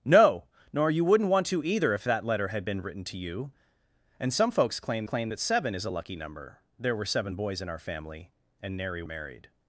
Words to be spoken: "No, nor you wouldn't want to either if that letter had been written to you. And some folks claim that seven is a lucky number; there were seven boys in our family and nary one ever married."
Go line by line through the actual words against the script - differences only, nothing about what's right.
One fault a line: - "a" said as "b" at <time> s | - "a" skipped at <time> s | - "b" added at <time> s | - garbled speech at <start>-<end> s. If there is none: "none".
- "claim" added at 5.0 s
- "one ever" skipped at 9.0 s